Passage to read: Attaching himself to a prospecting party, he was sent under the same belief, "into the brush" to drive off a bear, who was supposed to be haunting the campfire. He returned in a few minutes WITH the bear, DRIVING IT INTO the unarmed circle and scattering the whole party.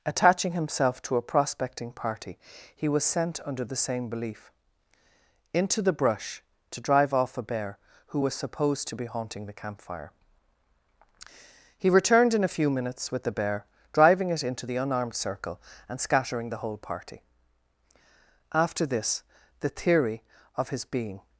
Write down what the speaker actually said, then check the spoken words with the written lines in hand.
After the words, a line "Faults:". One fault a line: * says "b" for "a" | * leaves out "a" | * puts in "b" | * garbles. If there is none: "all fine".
Attaching himself to a prospecting party, he was sent under the same belief, "into the brush" to drive off a bear, who was supposed to be haunting the campfire. He returned in a few minutes WITH the bear, DRIVING IT INTO the unarmed circle and scattering the whole party. After this the theory of his being
Faults:
* puts in "After this the theory of his being"